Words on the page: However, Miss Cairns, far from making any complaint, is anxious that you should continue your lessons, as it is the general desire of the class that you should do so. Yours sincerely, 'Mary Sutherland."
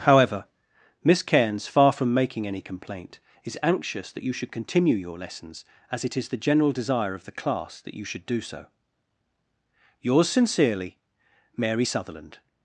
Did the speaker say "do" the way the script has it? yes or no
yes